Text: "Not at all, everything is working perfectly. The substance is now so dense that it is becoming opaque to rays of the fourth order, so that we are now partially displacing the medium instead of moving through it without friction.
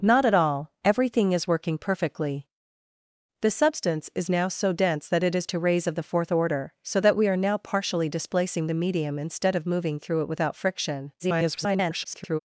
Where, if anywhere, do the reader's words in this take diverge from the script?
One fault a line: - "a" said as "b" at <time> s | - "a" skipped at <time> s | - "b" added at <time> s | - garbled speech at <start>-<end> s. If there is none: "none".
- "becoming opaque" skipped at 5.5 s
- garbled speech at 11.2-12.4 s